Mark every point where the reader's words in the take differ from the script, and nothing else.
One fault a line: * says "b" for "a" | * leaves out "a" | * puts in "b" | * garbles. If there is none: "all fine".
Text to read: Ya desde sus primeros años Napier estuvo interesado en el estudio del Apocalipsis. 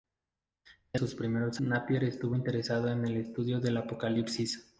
* leaves out "desde"
* leaves out "años"